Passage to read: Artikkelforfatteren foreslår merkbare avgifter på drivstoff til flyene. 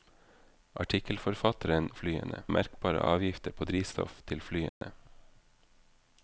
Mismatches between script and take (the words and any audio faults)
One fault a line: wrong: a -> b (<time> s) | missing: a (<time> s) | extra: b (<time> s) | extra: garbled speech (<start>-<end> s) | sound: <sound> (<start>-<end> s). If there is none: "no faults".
wrong: foreslår -> flyene (1.9 s)
sound: dropout (4.7-4.8 s)